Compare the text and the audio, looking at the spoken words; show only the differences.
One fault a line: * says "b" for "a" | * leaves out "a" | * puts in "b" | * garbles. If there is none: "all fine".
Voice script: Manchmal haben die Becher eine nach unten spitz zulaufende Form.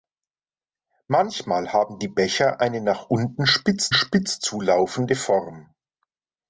* puts in "spitz"